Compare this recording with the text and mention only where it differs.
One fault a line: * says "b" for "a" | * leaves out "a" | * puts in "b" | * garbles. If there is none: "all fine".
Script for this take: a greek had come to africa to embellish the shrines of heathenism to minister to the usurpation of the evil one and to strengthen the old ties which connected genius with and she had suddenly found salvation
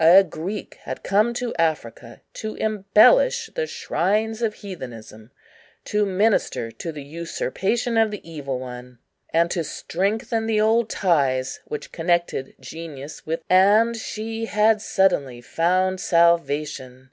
all fine